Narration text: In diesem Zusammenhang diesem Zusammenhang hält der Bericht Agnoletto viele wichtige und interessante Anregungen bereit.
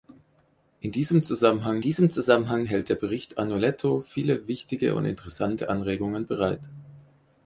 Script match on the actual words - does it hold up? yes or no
yes